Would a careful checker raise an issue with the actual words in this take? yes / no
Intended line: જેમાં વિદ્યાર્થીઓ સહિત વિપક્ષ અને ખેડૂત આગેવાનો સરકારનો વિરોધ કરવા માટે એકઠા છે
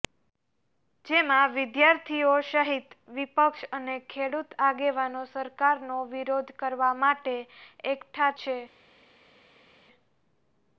no